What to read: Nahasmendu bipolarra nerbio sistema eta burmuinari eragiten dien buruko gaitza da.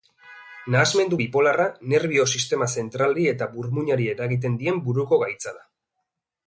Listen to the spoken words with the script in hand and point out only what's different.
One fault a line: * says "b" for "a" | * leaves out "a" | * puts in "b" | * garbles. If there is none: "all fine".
* puts in "zentralari"